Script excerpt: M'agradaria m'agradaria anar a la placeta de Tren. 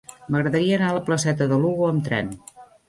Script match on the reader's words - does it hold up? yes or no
no